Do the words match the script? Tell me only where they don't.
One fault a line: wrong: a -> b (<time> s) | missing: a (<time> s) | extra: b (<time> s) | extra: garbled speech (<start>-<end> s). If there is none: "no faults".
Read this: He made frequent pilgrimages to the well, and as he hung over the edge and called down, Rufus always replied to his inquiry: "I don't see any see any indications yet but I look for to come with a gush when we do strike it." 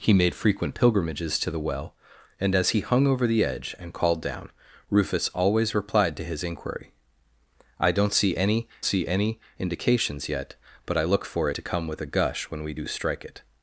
no faults